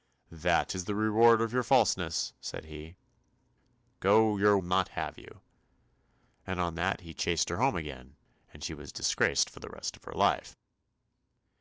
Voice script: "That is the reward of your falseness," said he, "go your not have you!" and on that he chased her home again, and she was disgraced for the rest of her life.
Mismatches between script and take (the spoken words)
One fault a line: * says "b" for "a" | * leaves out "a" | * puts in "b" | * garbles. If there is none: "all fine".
all fine